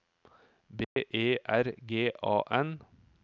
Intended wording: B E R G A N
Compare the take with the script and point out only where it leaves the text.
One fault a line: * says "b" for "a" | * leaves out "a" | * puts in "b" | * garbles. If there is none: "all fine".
all fine